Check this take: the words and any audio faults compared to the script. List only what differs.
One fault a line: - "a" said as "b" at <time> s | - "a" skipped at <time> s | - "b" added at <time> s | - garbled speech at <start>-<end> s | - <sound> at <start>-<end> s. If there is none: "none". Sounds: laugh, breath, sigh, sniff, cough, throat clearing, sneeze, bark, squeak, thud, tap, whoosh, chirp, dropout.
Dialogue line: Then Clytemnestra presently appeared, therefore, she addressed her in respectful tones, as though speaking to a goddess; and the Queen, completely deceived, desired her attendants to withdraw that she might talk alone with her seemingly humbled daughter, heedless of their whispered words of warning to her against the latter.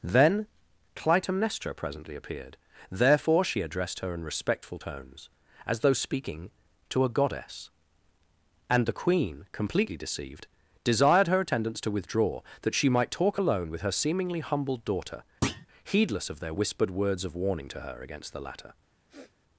- thud at 15.4-15.7 s
- sniff at 19.1-19.3 s